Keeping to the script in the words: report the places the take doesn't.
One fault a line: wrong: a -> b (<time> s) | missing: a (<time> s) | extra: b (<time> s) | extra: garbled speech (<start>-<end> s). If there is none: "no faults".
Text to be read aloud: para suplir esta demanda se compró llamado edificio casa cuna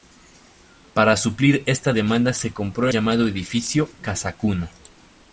no faults